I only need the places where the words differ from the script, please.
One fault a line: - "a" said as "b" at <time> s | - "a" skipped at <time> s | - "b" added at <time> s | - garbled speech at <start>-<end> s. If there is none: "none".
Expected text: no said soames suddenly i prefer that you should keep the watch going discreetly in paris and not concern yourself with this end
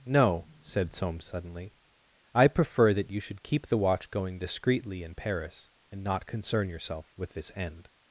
none